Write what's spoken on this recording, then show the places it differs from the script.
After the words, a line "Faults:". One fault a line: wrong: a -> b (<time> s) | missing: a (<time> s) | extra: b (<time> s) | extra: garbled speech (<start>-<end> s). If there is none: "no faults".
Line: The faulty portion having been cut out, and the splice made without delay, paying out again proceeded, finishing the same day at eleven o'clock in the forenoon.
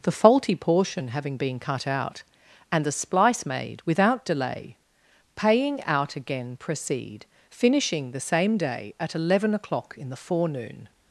The faulty portion having been cut out, and the splice made without delay, paying out again proceed, finishing the same day at eleven o'clock in the forenoon.
Faults:
wrong: proceeded -> proceed (6.6 s)